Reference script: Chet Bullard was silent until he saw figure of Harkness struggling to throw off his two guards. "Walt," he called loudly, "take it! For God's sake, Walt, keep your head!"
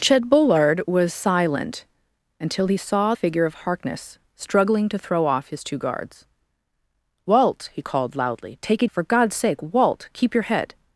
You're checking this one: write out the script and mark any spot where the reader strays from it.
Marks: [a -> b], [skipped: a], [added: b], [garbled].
Chet Bullard was silent until he saw figure of Harkness struggling to throw off his two guards. "Walt," he called loudly, "take it! For God's sake, Walt, keep your head!"